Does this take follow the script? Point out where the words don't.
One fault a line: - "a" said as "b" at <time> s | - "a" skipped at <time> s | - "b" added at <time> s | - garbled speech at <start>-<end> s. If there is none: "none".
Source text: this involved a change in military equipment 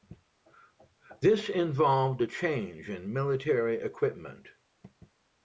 none